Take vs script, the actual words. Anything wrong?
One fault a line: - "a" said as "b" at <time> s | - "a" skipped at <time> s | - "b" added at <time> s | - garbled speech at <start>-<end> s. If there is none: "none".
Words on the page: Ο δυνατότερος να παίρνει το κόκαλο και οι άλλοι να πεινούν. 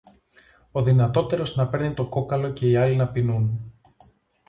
none